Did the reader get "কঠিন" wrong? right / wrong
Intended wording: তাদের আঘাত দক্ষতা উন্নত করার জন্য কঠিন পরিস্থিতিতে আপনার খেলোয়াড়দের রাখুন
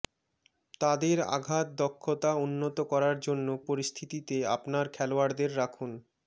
wrong